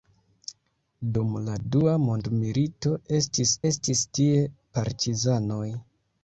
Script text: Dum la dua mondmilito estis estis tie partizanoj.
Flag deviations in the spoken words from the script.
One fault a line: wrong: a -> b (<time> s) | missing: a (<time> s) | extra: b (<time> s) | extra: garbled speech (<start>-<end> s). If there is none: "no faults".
no faults